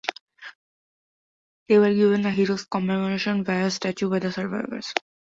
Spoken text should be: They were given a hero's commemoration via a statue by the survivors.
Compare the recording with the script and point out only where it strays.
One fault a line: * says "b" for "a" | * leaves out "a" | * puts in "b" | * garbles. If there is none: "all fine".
all fine